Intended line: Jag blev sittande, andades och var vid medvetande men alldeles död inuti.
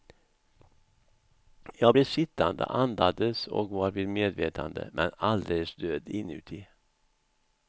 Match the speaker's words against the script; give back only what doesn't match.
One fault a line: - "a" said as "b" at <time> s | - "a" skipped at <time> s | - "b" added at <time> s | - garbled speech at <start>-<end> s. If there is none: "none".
none